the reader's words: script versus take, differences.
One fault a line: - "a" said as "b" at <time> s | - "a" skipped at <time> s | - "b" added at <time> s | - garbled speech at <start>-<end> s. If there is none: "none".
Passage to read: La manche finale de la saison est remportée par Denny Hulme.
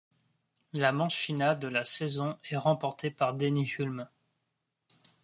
none